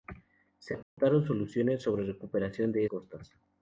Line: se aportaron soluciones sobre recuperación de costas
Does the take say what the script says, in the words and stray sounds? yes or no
no